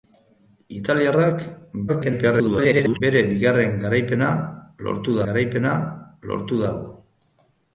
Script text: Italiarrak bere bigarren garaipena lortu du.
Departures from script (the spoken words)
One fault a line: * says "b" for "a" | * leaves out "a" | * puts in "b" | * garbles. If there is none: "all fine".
* garbles
* puts in "garaipena lortu"